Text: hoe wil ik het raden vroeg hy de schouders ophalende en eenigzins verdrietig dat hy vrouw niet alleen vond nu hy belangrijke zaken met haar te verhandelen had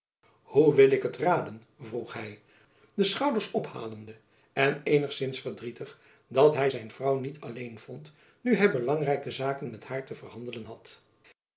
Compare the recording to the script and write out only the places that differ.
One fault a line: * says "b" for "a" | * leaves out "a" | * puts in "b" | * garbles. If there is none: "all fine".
* puts in "zijn"